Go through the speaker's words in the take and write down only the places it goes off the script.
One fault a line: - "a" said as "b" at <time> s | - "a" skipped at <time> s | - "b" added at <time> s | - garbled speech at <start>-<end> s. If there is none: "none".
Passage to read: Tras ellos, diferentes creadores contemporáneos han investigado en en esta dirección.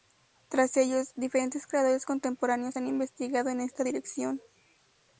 - "en" skipped at 3.6 s